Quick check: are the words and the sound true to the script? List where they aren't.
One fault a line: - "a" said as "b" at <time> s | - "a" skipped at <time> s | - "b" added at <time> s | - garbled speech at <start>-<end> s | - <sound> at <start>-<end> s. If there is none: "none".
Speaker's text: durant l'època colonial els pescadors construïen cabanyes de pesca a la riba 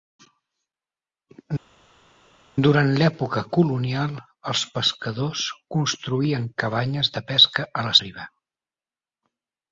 none